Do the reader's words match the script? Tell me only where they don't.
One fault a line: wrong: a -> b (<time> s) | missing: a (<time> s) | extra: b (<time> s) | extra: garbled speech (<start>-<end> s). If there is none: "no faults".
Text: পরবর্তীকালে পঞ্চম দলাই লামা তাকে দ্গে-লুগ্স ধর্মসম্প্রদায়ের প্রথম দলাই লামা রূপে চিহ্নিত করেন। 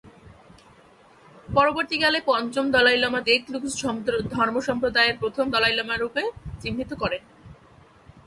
missing: তাকে (3.2 s)